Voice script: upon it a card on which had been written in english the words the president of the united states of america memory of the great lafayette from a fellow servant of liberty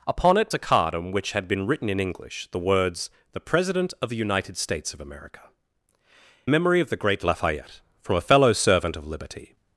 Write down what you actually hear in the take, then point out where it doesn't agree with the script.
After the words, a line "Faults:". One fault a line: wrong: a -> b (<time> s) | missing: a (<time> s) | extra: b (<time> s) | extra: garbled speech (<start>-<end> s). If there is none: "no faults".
upon it a card on which had been written in english the words the president of the united states of america memory of the great lafayette from a fellow servant of liberty
Faults:
no faults